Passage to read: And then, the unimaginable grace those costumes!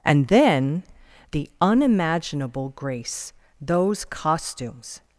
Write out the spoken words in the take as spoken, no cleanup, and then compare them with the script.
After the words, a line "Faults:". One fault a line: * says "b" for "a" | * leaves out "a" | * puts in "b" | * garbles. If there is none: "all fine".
And then, the unimaginable grace those costumes!
Faults:
all fine